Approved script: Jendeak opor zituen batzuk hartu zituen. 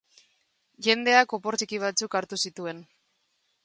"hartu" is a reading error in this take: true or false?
false